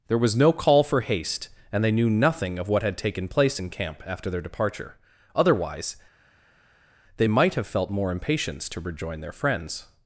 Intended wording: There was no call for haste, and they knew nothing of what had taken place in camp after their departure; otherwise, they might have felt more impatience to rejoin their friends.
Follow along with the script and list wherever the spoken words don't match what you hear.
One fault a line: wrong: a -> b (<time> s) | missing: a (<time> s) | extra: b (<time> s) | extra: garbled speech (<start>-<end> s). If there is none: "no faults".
no faults